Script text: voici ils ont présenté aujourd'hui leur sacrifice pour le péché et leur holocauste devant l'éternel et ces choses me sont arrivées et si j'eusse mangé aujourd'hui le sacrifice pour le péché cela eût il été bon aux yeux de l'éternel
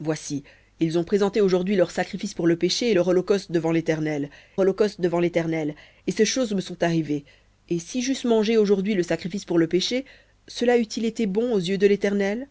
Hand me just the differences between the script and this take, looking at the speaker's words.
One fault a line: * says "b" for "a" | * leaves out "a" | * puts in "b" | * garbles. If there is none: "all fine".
* puts in "holocauste devant l'éternel"